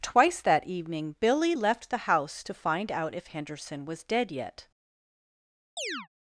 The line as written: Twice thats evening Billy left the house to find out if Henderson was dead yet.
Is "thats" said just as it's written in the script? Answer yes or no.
no